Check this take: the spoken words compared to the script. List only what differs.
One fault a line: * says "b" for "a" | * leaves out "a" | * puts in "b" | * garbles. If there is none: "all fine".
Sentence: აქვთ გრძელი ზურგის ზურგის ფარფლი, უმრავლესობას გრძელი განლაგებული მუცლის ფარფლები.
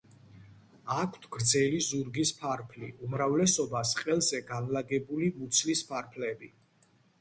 * leaves out "ზურგის"
* says "ყელზე" for "გრძელი"